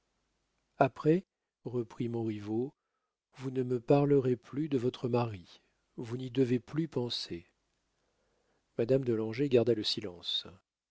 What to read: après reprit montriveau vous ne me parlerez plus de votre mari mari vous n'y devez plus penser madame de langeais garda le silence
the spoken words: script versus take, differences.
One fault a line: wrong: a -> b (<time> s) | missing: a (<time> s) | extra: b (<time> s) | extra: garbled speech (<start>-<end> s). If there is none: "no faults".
missing: mari (5.6 s)